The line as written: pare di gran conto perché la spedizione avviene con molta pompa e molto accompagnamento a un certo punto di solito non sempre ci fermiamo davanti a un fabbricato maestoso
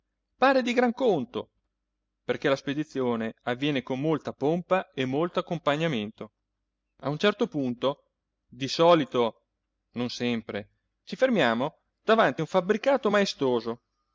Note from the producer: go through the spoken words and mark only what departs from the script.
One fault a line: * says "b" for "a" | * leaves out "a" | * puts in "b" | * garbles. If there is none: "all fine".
all fine